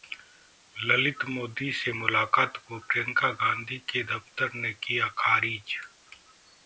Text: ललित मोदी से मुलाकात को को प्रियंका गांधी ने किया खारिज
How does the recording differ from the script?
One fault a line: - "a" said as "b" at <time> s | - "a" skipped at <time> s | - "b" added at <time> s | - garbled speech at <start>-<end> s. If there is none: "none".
- "को" skipped at 2.8 s
- "के दफ्तर" added at 3.9 s